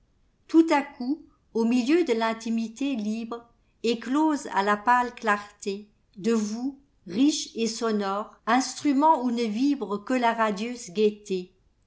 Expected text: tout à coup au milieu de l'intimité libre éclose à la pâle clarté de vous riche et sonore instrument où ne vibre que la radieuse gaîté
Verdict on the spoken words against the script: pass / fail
pass